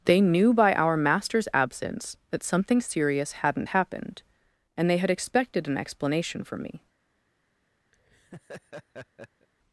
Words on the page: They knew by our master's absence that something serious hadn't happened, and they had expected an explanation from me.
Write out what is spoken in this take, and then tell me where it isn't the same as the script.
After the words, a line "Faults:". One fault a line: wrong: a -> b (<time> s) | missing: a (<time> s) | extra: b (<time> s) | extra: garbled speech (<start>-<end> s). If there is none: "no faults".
They knew by our master's absence that something serious hadn't happened, and they had expected an explanation from me.
Faults:
no faults